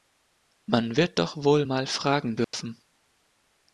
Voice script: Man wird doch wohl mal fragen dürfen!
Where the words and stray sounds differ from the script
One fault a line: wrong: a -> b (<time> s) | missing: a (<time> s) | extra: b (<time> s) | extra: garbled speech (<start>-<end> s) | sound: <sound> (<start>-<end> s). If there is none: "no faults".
sound: dropout (2.4-2.5 s)